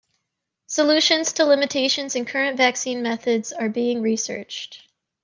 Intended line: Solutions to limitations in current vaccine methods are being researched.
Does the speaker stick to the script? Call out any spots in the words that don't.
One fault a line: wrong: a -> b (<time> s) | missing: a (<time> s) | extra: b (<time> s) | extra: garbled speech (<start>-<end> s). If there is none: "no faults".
no faults